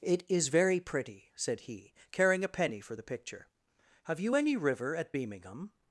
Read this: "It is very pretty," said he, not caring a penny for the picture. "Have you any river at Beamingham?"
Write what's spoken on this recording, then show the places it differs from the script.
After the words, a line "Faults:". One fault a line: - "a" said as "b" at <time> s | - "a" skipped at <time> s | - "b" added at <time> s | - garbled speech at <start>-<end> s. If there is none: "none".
"It is very pretty," said he, caring a penny for the picture. "Have you any river at Beamingham?"
Faults:
- "not" skipped at 1.9 s